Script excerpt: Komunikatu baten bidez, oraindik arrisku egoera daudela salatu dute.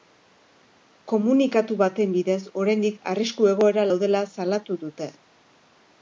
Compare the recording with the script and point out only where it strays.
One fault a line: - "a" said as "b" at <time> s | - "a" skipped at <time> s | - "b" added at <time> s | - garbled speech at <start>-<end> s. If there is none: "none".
none